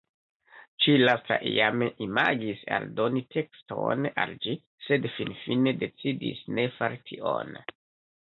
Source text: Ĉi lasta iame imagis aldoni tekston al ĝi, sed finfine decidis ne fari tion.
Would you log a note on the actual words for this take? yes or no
no